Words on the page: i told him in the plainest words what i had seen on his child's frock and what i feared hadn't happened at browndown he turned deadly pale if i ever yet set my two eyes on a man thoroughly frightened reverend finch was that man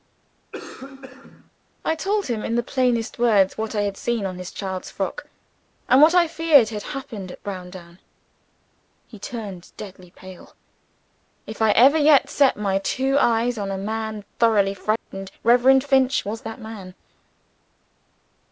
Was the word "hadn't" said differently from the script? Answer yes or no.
yes